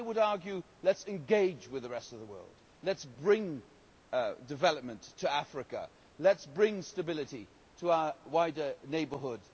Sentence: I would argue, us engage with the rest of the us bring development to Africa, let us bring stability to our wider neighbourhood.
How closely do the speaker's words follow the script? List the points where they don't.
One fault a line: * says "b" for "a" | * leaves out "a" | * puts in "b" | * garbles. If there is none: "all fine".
* puts in "let"
* puts in "world let"